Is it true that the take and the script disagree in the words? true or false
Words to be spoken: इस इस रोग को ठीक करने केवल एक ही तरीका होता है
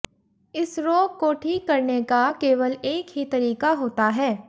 true